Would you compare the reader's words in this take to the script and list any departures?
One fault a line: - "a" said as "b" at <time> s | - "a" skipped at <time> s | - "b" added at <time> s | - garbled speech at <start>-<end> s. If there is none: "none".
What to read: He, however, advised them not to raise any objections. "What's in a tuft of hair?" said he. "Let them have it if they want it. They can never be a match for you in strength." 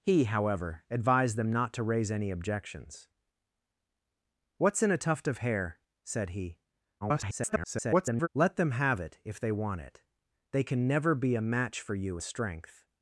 - garbled speech at 7.0-8.3 s
- "in" skipped at 12.2 s